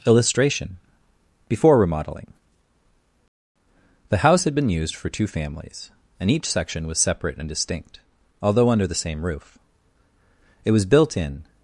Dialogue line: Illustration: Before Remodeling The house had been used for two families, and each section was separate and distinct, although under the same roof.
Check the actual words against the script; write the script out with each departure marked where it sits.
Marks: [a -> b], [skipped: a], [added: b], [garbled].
Illustration: Before Remodeling The house had been used for two families, and each section was separate and distinct, although under the same roof. [added: It was built in]